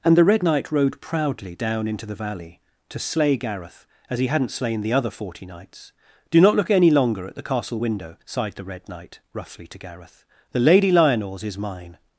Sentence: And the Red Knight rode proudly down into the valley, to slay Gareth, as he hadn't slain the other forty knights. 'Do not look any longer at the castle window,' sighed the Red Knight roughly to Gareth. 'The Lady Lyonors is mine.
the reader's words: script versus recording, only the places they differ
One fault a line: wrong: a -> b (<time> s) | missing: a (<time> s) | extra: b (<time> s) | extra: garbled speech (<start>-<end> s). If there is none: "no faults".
no faults